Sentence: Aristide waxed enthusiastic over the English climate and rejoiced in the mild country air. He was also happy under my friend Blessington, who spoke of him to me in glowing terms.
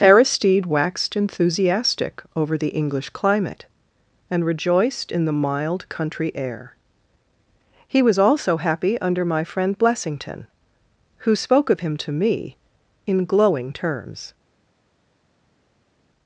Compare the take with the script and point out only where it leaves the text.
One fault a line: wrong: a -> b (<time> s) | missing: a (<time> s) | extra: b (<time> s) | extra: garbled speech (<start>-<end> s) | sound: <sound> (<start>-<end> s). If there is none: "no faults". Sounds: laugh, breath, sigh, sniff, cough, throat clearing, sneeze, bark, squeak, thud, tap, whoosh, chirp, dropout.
no faults